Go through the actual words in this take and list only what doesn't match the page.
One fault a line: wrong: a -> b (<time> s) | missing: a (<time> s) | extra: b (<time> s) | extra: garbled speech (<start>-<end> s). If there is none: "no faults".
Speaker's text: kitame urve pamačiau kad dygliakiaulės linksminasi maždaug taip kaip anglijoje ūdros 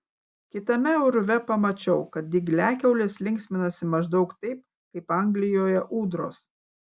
no faults